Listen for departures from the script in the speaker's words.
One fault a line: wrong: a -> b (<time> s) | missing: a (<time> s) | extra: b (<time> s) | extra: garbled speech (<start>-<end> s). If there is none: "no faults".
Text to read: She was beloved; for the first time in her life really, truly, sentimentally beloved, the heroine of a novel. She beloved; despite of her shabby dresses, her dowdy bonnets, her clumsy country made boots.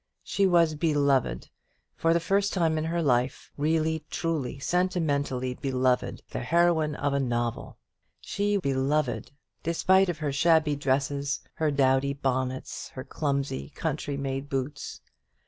no faults